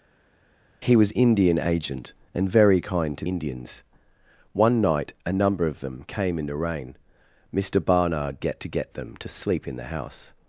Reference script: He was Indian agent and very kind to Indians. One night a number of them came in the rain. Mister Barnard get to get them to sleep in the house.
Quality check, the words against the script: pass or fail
pass